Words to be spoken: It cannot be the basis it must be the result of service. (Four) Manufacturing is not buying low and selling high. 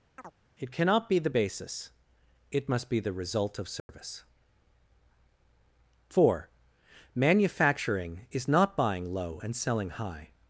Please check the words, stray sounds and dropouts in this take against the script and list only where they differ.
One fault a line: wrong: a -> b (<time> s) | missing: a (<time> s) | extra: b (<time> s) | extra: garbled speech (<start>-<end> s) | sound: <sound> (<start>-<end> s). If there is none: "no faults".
sound: chirp (0.2-0.3 s)
sound: dropout (3.8-3.9 s)